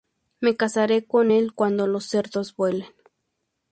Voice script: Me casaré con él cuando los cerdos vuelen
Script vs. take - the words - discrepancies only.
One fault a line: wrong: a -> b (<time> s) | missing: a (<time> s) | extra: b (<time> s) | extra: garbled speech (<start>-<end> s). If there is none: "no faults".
no faults